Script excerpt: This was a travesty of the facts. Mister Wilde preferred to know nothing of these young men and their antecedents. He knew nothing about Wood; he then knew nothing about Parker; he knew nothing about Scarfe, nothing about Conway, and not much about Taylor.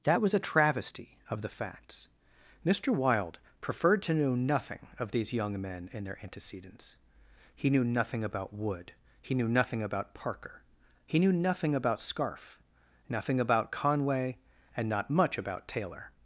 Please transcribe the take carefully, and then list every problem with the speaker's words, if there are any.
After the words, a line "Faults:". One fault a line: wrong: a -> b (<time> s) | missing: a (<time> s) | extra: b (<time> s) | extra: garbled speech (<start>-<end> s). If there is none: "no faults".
That was a travesty of the facts. Mister Wilde preferred to know nothing of these young men and their antecedents. He knew nothing about Wood; he knew nothing about Parker; he knew nothing about Scarfe, nothing about Conway, and not much about Taylor.
Faults:
wrong: This -> That (0.0 s)
missing: then (9.3 s)